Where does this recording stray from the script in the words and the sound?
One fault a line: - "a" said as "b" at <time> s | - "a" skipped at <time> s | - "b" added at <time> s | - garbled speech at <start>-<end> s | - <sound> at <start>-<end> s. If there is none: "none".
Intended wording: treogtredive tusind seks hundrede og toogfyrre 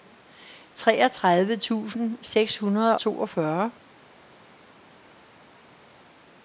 - "og" skipped at 3.0 s